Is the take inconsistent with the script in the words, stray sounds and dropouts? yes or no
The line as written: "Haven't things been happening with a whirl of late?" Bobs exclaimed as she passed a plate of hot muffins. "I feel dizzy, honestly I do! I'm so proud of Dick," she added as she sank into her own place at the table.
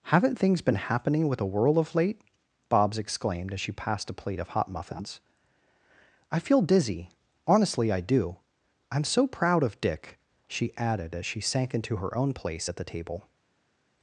no